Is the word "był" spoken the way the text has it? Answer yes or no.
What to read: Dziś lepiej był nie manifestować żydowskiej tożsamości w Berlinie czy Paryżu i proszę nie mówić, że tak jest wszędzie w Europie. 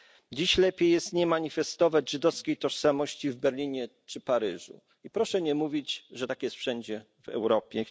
no